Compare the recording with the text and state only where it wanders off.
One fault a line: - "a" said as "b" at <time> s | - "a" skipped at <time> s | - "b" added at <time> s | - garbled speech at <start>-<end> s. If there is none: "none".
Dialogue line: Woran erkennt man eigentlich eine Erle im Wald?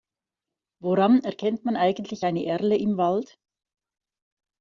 none